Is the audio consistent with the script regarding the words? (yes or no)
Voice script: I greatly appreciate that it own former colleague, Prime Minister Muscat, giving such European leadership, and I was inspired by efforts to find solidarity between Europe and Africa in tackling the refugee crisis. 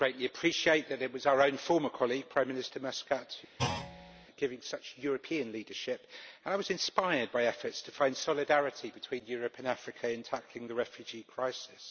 no